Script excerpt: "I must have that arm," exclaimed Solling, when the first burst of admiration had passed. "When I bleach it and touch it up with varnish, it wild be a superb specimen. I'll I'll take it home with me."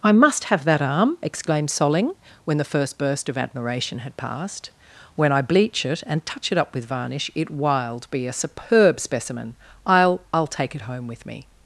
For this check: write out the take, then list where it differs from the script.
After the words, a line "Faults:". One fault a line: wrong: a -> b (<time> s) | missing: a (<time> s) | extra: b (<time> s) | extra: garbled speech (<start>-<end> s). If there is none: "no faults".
"I must have that arm," exclaimed Solling, when the first burst of admiration had passed. "When I bleach it and touch it up with varnish, it wild be a superb specimen. I'll I'll take it home with me."
Faults:
no faults